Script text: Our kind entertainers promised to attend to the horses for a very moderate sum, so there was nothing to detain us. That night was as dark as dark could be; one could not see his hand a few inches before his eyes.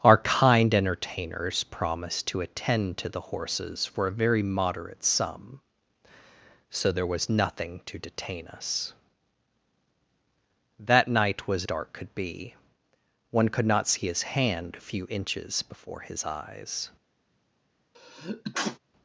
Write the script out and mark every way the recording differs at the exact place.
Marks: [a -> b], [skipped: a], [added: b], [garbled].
Our kind entertainers promised to attend to the horses for a very moderate sum, so there was nothing to detain us. That night was [skipped: as dark as] dark could be; one could not see his hand a few inches before his eyes.